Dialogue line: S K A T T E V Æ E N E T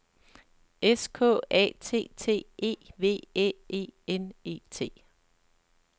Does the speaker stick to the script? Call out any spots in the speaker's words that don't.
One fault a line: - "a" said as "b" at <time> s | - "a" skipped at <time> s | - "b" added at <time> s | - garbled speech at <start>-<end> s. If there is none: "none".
none